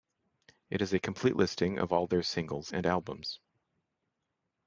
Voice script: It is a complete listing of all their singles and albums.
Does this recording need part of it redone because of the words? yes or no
no